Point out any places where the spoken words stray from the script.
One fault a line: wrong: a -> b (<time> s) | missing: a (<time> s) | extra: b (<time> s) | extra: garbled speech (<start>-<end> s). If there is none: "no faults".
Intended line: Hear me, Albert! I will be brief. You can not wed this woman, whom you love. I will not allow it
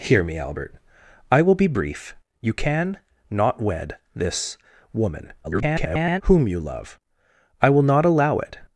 extra: garbled speech (5.4-6.2 s)